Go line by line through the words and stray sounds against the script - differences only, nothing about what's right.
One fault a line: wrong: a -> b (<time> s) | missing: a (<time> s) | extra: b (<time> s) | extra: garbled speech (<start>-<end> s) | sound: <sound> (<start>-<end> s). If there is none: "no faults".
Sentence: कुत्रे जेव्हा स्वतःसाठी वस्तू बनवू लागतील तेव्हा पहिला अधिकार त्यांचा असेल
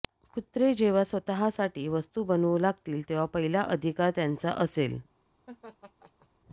sound: laugh (5.5-6.3 s)